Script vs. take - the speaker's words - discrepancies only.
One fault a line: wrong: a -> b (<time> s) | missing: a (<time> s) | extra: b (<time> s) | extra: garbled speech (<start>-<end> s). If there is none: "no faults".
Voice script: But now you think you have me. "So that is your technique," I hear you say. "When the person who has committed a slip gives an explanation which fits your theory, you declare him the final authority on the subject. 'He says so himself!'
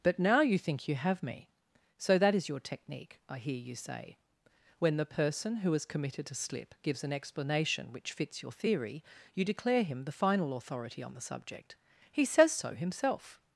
no faults